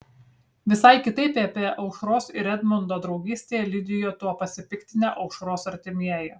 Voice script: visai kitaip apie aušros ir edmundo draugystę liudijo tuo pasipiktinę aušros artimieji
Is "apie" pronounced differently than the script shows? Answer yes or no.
no